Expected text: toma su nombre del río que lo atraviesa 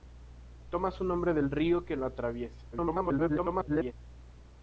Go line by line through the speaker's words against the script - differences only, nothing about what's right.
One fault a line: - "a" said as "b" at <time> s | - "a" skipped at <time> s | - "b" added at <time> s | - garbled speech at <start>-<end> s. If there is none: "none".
- garbled speech at 2.7-3.9 s